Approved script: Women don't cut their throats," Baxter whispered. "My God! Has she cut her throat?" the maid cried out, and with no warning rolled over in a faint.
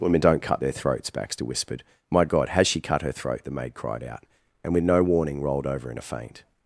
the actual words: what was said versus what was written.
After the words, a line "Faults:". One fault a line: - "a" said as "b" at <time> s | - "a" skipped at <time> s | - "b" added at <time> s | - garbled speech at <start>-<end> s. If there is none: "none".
Women don't cut their throats," Baxter whispered. "My God! Has she cut her throat?" the maid cried out, and with no warning rolled over in a faint.
Faults:
none